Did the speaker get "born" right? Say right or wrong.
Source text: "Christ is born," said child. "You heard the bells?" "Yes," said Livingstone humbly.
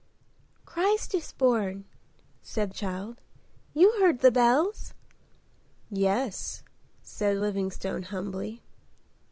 right